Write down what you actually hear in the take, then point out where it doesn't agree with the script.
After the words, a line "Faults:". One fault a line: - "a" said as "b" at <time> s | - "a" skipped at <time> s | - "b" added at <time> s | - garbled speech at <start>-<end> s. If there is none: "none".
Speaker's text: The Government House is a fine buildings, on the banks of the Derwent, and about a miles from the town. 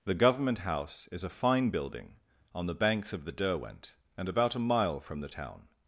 The Government House is a fine building, on the banks of the Derwent, and about a mile from the town.
Faults:
- "buildings" said as "building" at 1.7 s
- "miles" said as "mile" at 4.7 s